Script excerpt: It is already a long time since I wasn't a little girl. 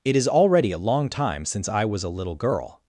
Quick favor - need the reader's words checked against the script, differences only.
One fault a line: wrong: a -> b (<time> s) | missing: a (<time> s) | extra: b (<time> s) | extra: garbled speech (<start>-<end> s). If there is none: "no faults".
wrong: wasn't -> was (1.8 s)